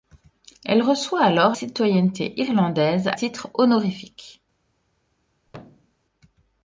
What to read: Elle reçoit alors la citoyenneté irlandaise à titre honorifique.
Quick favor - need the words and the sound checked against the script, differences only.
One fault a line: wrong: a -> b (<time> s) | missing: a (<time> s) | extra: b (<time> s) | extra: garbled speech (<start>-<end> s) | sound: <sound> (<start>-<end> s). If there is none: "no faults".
missing: la (1.6 s)
missing: à (3.1 s)
sound: thud (5.5-6.0 s)